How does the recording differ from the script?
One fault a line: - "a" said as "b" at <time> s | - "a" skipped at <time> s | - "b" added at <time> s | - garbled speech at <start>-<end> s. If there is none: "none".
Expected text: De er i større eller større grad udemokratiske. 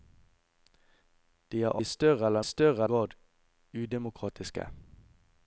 none